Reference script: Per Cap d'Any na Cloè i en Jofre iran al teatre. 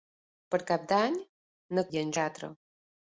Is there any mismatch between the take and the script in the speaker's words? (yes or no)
yes